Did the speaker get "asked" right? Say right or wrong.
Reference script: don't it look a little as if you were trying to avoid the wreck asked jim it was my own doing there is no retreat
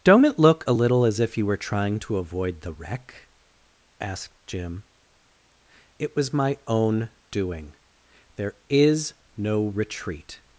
right